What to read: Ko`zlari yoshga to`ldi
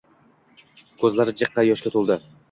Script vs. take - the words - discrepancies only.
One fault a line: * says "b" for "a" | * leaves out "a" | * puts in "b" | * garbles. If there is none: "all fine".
* puts in "jiqqa"